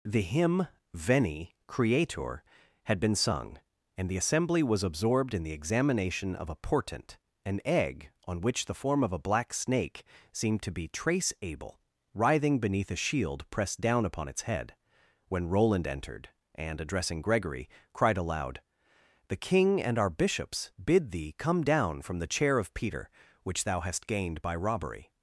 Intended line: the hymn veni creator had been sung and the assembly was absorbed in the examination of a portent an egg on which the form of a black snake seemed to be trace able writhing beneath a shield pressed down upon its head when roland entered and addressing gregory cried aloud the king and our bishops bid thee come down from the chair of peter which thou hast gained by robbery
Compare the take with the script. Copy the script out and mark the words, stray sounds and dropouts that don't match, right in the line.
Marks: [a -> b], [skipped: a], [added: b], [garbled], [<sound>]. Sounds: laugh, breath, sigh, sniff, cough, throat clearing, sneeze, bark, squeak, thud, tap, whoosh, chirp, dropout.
the hymn veni creator had been sung and the assembly was absorbed in the examination of a portent an egg on which the form of a black snake seemed to be trace able writhing beneath a shield pressed down upon its head when roland entered and addressing gregory cried aloud the king and our bishops bid thee come down from the chair of peter which thou hast gained by robbery